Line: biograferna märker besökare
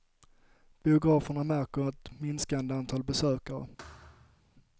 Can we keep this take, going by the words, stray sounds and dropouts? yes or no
no